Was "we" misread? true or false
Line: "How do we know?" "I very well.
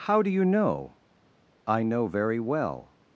true